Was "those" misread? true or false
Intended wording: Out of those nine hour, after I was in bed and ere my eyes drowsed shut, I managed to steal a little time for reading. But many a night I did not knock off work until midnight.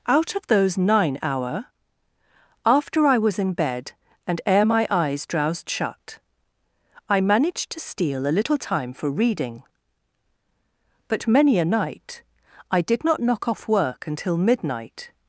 false